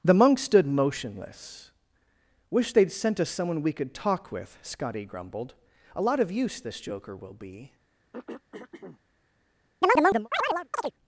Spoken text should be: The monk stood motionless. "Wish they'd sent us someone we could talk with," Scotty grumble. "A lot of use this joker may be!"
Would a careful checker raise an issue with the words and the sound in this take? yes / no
yes